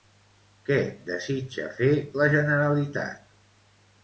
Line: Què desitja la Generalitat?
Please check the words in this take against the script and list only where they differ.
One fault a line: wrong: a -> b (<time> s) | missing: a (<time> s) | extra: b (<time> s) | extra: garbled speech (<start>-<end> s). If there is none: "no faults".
extra: fer (1.8 s)